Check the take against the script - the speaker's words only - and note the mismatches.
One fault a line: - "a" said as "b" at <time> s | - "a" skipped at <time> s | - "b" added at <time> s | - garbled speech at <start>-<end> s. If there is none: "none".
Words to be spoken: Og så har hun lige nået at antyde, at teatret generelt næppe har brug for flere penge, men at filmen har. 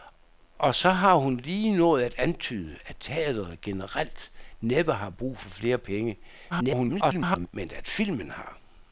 - garbled speech at 6.5-7.5 s